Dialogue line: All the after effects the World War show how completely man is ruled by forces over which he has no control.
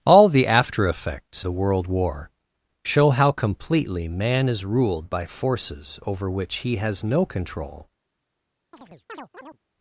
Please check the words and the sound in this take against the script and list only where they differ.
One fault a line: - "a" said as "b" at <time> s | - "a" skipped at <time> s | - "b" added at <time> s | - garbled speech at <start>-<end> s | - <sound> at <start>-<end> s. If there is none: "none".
- chirp at 8.7-9.6 s